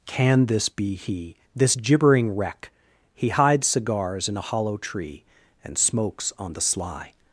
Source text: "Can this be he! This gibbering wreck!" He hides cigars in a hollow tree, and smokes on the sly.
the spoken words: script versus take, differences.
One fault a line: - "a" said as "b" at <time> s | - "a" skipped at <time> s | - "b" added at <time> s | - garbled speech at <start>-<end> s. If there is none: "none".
none